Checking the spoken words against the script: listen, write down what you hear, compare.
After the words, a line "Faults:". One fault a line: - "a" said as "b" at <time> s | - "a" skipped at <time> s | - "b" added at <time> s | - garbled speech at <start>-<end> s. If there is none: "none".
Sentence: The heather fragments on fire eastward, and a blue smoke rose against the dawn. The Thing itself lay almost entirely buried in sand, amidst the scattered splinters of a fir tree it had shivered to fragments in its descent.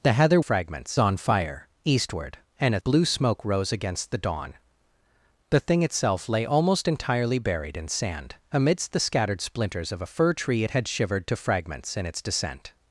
The heather fragments on fire eastward, and a blue smoke rose against the dawn. The Thing itself lay almost entirely buried in sand, amidst the scattered splinters of a fir tree it had shivered to fragments in its descent.
Faults:
none